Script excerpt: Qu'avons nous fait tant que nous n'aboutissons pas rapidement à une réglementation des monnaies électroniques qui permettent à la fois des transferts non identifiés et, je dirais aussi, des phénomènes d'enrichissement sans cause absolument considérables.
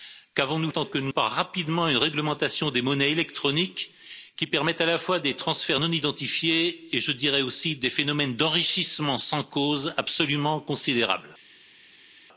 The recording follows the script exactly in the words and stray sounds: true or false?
false